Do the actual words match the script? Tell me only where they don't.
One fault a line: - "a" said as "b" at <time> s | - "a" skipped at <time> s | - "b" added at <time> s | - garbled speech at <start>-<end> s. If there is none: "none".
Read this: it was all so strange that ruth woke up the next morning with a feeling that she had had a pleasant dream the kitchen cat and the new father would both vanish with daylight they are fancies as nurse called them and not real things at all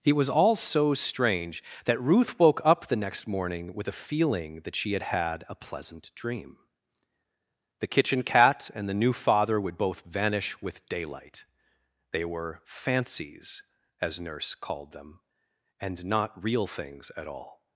- "are" said as "were" at 12.2 s